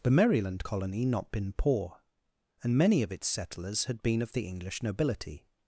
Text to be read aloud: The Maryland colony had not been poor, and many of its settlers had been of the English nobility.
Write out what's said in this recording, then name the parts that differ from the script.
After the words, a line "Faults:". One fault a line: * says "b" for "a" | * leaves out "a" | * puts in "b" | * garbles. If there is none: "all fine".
The Maryland colony not been poor, and many of its settlers had been of the English nobility.
Faults:
* leaves out "had"